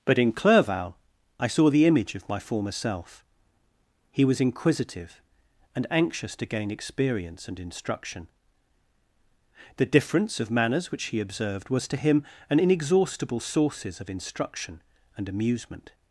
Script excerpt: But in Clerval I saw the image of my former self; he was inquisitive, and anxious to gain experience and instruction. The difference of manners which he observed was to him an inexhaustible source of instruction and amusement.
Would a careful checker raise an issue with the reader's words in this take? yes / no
yes